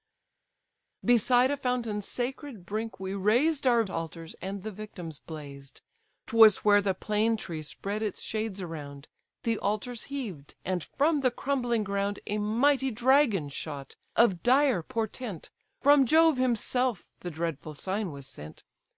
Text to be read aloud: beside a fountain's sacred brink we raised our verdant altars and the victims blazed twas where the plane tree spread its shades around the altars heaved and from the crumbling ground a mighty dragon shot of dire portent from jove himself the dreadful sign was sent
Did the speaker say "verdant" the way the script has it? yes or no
no